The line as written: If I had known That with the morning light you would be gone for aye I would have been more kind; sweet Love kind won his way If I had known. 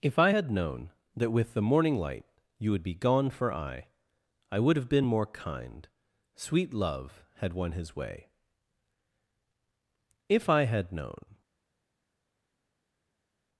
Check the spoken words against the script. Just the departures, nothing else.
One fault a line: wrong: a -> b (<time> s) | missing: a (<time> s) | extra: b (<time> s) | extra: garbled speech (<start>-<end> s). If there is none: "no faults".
wrong: kind -> had (7.4 s)